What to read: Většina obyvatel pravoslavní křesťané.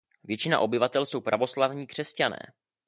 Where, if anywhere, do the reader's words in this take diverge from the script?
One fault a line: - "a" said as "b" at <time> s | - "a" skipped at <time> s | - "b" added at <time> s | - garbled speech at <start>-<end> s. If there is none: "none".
- "jsou" added at 1.1 s